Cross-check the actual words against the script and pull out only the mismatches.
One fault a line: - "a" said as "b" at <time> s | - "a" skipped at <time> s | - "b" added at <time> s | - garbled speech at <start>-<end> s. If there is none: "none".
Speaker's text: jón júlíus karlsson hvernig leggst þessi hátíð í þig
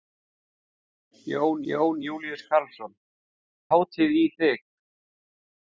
- "jón" added at 1.7 s
- "hvernig leggst þessi" skipped at 2.9 s